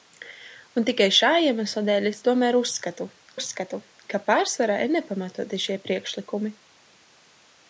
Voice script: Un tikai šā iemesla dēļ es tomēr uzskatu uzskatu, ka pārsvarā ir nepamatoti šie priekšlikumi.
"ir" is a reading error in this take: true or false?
false